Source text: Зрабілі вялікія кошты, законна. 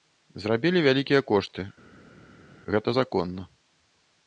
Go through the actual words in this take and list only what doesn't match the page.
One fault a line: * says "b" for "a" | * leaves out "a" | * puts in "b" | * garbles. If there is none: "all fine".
* puts in "гэта"